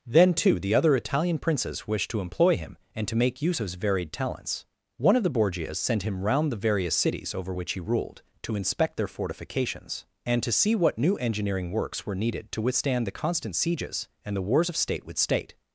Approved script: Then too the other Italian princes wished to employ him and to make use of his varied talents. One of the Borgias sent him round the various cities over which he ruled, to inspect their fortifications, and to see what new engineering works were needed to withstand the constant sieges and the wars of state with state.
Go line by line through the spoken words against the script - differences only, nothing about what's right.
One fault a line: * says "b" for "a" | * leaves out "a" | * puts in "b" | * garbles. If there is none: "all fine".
all fine